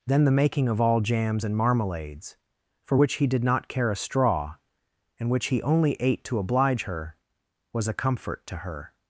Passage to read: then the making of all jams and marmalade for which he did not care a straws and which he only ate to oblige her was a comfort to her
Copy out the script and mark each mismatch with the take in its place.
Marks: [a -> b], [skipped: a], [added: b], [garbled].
then the making of all jams and [marmalade -> marmalades] for which he did not care a [straws -> straw] and which he only ate to oblige her was a comfort to her